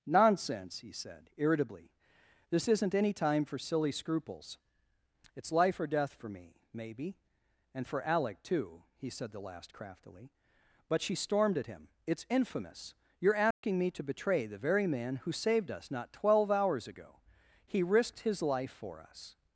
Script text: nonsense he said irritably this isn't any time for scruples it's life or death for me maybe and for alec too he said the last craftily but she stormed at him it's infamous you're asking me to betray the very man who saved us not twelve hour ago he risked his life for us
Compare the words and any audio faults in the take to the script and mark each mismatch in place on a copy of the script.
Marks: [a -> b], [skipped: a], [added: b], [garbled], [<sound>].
nonsense he said irritably this isn't any time for [added: silly] scruples it's life or death for me maybe and for alec too he said the last craftily but she stormed at him it's infamous you're asking [dropout] me to betray the very man who saved us not twelve [hour -> hours] ago he risked his life for us